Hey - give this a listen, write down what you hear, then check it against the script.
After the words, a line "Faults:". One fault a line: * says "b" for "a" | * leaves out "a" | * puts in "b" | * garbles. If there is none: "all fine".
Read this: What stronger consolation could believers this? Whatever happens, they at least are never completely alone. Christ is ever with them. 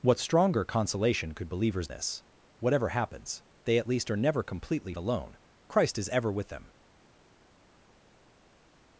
What stronger consolation could believers this? Whatever happens, they at least are never completely alone. Christ is ever with them.
Faults:
all fine